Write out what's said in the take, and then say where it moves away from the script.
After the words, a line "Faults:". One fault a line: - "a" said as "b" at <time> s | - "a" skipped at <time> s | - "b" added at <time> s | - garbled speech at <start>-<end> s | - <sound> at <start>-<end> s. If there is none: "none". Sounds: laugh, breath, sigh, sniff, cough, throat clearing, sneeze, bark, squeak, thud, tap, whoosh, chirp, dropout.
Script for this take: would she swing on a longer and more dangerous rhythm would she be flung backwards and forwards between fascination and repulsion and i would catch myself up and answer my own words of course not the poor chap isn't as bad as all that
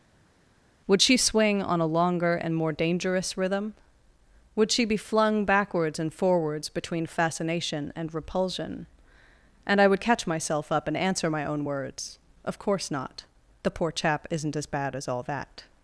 would she swing on a longer and more dangerous rhythm would she be flung backwards and forwards between fascination and repulsion and i would catch myself up and answer my own words of course not the poor chap isn't as bad as all that
Faults:
none